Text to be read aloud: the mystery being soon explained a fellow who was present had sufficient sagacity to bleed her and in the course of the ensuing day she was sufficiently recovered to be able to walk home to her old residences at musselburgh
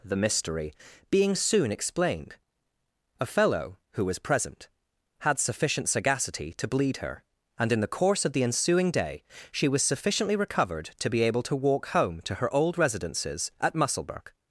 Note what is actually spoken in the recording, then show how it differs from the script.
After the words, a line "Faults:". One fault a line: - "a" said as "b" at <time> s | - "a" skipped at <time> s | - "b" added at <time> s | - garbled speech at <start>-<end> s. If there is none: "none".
the mystery being soon explained a fellow who was present had sufficient sagacity to bleed her and in the course of the ensuing day she was sufficiently recovered to be able to walk home to her old residences at musselburgh
Faults:
none